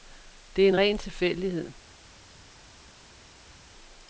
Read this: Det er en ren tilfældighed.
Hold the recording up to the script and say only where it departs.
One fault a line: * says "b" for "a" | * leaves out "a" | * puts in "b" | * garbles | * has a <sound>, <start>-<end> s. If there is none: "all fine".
all fine